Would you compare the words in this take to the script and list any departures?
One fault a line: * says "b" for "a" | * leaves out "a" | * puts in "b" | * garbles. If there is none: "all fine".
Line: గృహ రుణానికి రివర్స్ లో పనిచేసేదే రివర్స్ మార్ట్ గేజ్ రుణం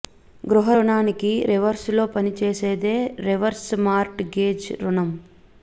all fine